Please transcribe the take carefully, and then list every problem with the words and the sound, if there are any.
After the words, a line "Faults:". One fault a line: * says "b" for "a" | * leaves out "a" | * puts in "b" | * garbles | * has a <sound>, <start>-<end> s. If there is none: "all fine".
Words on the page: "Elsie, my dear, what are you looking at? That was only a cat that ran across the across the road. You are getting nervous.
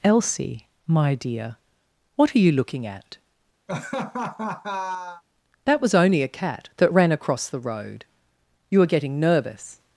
"Elsie, my dear, what are you looking at? That was only a cat that ran across the road. You are getting nervous.
Faults:
* has a laugh, 3.7-5.2 s
* leaves out "across the"